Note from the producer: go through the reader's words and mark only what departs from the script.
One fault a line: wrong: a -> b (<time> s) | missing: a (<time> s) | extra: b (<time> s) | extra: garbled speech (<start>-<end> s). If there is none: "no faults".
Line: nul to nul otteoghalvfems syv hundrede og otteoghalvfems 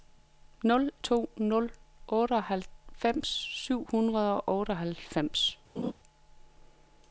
no faults